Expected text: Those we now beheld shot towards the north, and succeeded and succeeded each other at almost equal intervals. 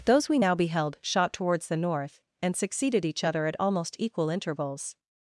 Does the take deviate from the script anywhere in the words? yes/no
yes